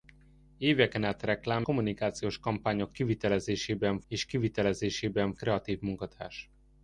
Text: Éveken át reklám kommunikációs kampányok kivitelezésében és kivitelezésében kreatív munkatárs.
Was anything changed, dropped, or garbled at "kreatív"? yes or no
no